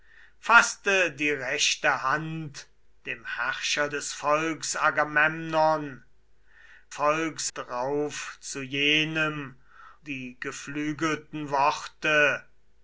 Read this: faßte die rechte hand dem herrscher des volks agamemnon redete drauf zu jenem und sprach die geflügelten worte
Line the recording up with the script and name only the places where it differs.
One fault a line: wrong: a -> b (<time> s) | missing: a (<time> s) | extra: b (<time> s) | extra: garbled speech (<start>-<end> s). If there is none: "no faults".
wrong: redete -> volks (6.9 s)
missing: und sprach (9.6 s)